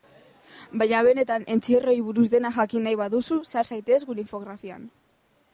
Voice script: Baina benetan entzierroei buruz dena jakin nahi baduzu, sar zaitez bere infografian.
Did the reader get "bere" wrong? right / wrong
wrong